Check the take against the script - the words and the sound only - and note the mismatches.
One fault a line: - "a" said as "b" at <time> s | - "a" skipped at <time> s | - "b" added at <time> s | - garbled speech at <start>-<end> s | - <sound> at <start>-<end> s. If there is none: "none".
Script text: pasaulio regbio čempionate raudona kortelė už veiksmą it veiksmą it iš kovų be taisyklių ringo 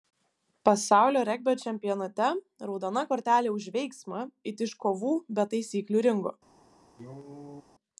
- "veiksmą it" skipped at 4.7 s
- cough at 7.0-7.6 s